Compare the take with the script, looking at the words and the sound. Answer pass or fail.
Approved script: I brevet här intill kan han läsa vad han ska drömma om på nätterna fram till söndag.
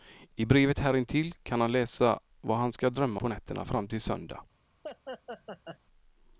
fail